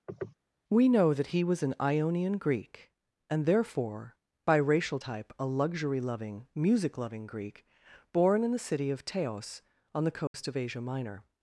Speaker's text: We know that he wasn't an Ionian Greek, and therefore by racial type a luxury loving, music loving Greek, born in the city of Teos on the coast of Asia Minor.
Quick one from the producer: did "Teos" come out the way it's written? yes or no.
yes